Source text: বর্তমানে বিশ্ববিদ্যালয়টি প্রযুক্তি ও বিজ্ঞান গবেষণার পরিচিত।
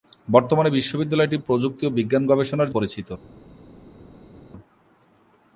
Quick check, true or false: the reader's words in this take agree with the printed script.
true